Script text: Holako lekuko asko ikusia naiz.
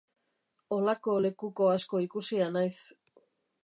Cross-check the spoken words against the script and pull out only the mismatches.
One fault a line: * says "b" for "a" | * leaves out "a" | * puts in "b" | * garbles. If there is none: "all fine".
all fine